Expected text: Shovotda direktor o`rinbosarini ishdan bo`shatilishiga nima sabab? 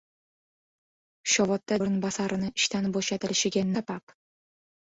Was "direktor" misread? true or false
true